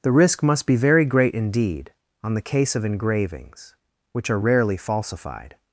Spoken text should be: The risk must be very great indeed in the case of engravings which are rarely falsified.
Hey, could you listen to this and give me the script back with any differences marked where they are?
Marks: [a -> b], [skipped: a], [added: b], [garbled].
The risk must be very great indeed [in -> on] the case of engravings which are rarely falsified.